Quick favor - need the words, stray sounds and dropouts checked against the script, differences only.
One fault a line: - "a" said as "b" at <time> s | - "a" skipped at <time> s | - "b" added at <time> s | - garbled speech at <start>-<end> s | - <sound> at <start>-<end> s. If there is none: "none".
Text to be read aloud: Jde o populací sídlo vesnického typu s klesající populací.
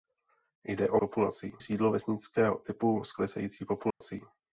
- dropout at 3.9-4.0 s